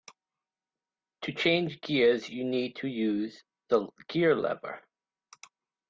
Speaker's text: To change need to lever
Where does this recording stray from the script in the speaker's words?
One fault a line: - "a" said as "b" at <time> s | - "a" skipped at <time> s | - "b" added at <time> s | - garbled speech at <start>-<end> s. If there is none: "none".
- "gears you" added at 1.8 s
- "use the gear" added at 2.9 s